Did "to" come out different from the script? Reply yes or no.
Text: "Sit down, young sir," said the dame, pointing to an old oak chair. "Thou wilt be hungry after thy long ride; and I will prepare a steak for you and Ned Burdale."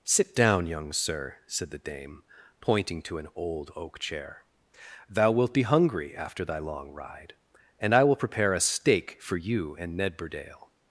no